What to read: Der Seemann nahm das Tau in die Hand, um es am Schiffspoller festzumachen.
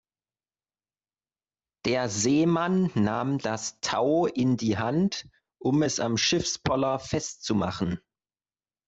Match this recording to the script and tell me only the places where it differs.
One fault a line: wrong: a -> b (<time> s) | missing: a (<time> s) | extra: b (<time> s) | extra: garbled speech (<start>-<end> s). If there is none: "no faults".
no faults